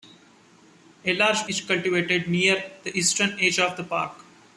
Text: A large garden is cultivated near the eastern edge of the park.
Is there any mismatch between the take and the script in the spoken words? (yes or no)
yes